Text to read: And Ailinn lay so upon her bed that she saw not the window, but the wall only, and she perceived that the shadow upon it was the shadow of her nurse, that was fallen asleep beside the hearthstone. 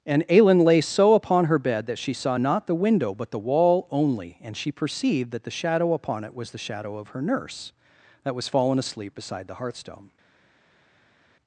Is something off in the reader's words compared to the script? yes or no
no